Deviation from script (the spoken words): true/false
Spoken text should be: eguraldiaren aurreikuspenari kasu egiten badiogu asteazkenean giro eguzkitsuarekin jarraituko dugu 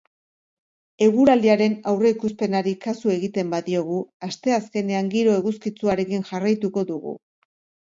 false